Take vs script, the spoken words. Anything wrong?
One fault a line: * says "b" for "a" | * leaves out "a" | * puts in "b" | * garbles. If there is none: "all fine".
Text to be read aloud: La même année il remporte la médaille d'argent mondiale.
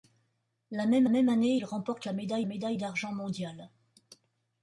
* puts in "même"
* puts in "médaille"